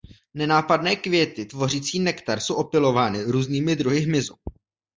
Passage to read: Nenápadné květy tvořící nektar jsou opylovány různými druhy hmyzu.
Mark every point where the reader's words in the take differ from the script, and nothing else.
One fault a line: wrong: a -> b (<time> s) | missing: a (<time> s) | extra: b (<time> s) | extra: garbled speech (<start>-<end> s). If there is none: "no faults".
no faults